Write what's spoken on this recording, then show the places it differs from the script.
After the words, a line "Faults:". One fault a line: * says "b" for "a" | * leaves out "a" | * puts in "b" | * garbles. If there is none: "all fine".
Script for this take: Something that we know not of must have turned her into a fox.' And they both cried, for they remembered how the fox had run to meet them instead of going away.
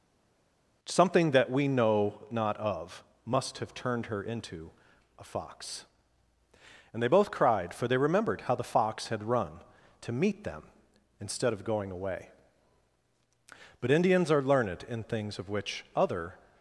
Something that we know not of must have turned her into a fox.' And they both cried, for they remembered how the fox had run to meet them instead of going away. But Indians are learned in things of which other
Faults:
* puts in "But Indians are learned in things of which other"